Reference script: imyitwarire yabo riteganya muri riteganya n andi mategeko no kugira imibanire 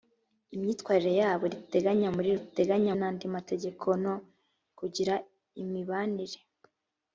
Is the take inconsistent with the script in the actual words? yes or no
no